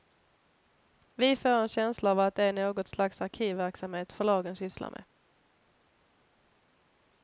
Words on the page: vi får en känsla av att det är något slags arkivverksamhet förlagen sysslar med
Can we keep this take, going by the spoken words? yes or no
yes